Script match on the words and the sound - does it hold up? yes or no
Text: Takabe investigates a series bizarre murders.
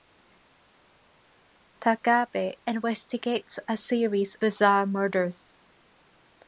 yes